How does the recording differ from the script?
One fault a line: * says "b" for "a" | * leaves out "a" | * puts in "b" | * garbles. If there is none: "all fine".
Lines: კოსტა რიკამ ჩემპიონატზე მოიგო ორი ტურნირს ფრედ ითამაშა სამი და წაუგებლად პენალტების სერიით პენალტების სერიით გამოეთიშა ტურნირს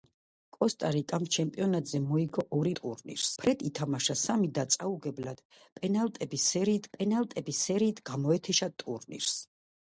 all fine